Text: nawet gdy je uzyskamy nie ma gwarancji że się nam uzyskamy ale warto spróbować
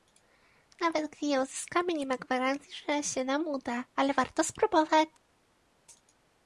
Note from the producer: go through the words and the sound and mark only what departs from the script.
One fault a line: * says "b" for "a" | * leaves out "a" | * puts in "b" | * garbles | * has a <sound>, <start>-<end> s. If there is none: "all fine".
* says "uda" for "uzyskamy"